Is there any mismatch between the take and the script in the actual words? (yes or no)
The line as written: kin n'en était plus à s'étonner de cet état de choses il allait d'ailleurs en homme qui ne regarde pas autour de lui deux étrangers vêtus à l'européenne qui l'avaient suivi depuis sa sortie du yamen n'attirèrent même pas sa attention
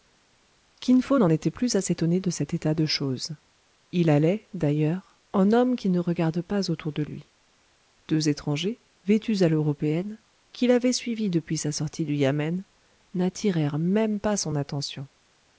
yes